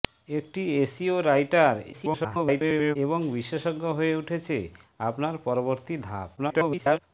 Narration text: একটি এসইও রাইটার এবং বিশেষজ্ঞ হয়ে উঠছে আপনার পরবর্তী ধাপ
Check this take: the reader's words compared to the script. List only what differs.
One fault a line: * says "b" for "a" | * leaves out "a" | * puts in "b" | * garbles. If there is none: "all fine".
* garbles
* garbles